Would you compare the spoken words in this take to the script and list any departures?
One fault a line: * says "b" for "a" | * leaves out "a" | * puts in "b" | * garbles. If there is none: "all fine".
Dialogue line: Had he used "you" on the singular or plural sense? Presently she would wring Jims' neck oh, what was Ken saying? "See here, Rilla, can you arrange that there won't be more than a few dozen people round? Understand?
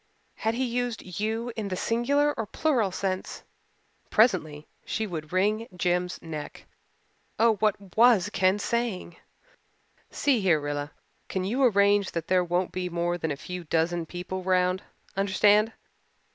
* says "in" for "on"